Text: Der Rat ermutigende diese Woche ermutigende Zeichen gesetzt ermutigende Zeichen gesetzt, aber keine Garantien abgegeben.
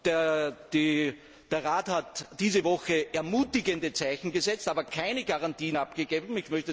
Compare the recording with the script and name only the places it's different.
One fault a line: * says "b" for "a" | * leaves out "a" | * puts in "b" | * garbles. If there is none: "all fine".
* says "hat" for "ermutigende"
* leaves out "ermutigende Zeichen gesetzt"